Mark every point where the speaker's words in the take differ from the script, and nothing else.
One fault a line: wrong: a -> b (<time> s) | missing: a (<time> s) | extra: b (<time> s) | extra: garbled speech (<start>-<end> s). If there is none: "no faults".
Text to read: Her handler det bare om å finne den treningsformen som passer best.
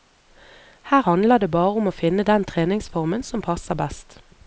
no faults